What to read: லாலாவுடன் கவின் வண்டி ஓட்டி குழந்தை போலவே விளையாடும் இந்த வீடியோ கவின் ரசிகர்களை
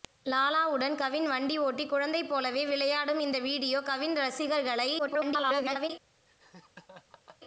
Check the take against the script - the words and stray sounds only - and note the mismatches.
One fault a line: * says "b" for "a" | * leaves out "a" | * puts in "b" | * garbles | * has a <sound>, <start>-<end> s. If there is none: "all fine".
* garbles
* has a laugh, 6.3-7.4 s